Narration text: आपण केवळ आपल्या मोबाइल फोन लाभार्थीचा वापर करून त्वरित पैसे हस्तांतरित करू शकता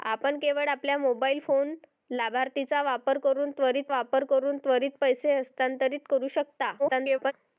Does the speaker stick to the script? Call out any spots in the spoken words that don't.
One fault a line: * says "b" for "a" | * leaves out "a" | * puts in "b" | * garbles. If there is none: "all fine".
* puts in "वापर करून त्वरित"
* garbles